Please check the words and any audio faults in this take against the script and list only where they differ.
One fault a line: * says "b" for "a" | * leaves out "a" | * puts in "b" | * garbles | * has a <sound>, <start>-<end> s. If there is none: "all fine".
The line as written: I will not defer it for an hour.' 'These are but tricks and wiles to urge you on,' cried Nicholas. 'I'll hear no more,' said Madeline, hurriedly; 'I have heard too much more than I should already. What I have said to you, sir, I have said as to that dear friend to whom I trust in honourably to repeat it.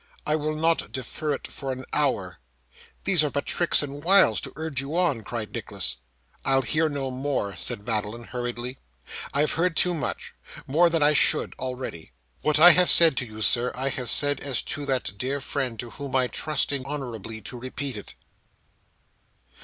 all fine